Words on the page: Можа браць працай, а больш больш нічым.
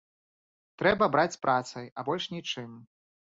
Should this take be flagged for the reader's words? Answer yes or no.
yes